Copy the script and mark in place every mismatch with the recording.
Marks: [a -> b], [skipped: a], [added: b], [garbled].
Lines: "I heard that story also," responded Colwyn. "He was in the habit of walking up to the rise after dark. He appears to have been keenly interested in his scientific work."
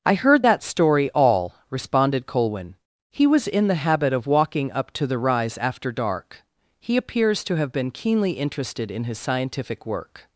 "I heard that story [also," -> all] responded Colwyn. "He was in the habit of walking up to the rise after dark. He appears to have been keenly interested in his scientific work."